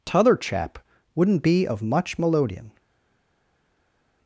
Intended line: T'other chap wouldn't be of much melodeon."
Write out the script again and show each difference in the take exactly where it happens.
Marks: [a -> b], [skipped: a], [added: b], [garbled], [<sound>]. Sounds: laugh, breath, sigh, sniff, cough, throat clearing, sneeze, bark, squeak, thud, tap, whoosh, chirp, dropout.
T'other chap wouldn't be of much melodeon."